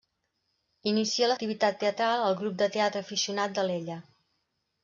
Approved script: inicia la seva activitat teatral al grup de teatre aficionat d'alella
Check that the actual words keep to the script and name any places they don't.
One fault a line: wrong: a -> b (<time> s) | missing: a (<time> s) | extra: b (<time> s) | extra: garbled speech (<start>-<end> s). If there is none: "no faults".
missing: seva (1.4 s)